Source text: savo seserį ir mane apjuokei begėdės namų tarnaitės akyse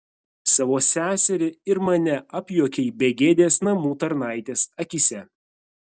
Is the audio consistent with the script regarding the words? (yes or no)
yes